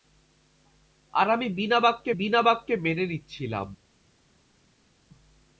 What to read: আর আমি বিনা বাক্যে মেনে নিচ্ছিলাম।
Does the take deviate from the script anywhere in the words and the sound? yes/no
yes